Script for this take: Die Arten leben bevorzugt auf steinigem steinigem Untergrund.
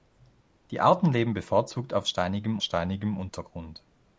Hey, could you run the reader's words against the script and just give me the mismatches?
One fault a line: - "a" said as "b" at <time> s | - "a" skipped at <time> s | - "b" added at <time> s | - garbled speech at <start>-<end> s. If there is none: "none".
none